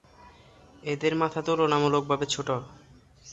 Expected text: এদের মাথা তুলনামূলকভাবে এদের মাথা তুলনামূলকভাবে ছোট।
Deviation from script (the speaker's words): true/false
true